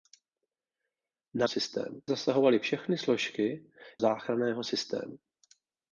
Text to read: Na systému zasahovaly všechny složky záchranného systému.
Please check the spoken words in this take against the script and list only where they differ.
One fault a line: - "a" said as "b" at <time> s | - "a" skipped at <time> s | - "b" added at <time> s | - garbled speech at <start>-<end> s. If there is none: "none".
none